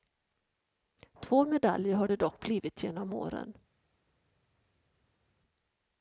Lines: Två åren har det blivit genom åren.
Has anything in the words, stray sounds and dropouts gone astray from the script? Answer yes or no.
yes